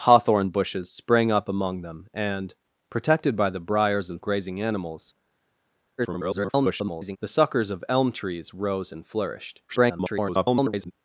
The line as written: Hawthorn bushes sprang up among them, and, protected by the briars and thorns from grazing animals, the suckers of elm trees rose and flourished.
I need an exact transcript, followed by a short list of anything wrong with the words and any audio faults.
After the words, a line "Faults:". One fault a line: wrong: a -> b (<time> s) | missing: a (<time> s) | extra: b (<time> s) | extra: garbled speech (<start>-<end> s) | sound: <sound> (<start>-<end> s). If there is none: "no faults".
Hawthorn bushes sprang up among them, and, protected by the briars and grazing animals, [garbled] the suckers of elm trees rose and flourished. [garbled]
Faults:
missing: thorns from (4.2 s)
extra: garbled speech (6.0-7.2 s)
extra: garbled speech (9.7-10.9 s)